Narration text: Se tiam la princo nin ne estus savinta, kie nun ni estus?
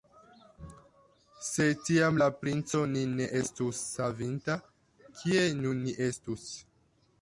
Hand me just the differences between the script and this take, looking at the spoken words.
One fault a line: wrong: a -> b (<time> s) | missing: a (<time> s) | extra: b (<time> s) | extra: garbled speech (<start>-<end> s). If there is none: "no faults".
no faults